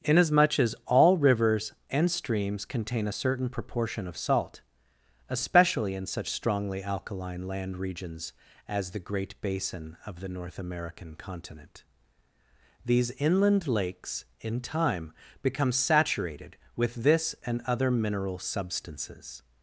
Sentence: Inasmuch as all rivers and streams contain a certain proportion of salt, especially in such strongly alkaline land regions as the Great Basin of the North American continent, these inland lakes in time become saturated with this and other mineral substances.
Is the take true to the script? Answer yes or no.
yes